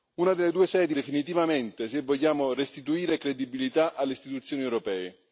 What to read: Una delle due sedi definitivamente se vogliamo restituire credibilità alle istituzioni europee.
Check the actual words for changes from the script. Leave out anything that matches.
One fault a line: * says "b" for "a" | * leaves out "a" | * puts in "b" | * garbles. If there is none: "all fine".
all fine